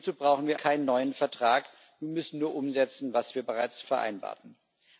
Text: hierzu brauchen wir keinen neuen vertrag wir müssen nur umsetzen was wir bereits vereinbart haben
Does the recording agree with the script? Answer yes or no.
yes